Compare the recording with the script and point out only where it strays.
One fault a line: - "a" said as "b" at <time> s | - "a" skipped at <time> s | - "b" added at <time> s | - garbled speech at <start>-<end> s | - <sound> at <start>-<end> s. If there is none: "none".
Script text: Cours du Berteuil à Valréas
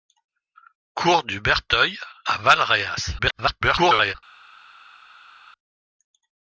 - garbled speech at 3.2-4.2 s